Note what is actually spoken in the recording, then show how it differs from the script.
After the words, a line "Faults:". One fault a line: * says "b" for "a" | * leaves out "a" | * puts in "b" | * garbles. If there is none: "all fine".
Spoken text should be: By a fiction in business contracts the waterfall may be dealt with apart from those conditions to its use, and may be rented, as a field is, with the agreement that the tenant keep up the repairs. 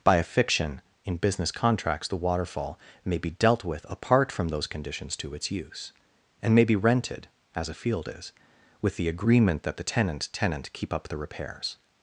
By a fiction in business contracts the waterfall may be dealt with apart from those conditions to its use, and may be rented, as a field is, with the agreement that the tenant tenant keep up the repairs.
Faults:
* puts in "tenant"